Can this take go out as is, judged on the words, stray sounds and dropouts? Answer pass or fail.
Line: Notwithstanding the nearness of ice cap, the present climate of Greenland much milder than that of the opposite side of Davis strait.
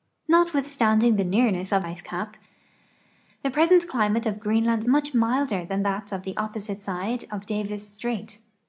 pass